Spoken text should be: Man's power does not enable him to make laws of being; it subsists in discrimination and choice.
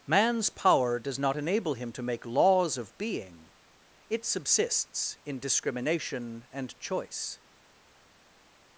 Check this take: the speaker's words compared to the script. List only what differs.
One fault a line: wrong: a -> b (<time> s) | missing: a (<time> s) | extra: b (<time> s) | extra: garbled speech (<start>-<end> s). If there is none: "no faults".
no faults